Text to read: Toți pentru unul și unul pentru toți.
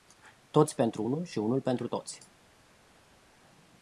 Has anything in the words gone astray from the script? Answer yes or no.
no